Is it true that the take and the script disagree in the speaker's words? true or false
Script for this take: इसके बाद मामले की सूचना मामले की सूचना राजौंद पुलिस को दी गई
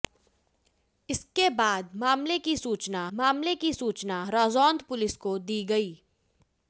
false